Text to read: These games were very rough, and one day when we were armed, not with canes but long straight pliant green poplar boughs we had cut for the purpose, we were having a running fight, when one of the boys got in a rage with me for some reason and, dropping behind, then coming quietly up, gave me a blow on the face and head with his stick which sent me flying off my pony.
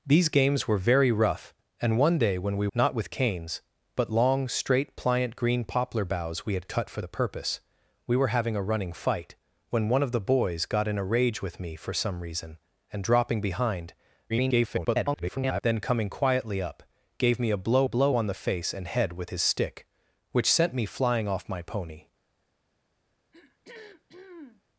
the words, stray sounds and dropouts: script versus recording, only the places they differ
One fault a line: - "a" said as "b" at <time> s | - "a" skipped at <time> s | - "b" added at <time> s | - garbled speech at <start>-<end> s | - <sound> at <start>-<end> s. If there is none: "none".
- "were armed" skipped at 2.7 s
- garbled speech at 14.3-15.6 s
- "blow" added at 17.8 s
- throat clearing at 23.3-24.6 s